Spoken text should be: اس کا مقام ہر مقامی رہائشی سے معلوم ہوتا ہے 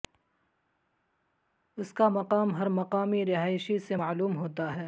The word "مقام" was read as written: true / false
true